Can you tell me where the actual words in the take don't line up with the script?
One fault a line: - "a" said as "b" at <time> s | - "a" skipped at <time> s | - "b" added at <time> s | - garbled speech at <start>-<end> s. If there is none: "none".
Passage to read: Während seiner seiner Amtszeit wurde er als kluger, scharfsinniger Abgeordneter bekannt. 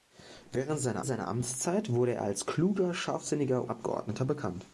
none